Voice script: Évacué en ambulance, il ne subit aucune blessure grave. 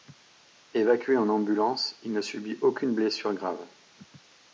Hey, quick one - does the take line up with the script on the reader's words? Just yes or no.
yes